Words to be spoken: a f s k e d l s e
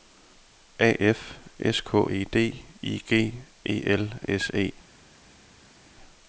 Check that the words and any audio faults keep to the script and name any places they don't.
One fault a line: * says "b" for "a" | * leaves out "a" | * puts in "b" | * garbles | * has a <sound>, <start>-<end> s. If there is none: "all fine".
* puts in "i g e"